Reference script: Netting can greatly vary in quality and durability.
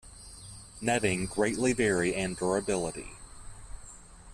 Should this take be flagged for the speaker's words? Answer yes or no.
yes